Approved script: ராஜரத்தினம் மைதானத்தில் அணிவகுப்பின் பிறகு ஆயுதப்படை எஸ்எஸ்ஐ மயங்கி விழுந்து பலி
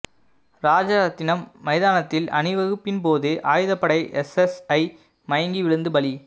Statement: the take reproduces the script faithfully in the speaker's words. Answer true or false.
false